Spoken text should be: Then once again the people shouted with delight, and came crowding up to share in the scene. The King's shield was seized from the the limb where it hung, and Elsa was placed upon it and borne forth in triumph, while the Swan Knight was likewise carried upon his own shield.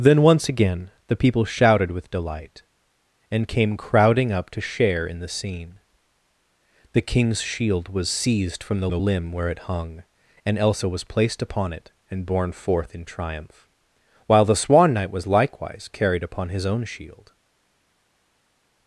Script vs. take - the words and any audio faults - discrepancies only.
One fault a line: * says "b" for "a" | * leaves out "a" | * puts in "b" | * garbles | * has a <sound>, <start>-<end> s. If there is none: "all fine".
all fine